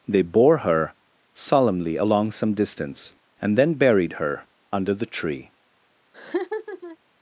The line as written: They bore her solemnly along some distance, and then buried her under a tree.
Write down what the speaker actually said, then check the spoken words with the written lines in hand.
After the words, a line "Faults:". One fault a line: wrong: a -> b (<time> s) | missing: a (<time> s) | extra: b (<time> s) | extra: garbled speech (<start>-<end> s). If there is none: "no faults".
They bore her solemnly along some distance, and then buried her under the tree.
Faults:
wrong: a -> the (4.9 s)